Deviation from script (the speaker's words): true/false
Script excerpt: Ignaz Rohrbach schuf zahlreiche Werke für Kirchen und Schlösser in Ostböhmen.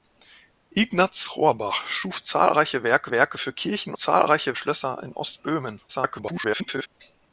true